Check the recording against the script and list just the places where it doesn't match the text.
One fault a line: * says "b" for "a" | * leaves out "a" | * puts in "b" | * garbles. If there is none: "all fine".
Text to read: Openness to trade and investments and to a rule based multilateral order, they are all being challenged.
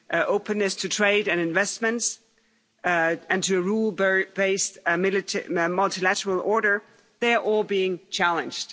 all fine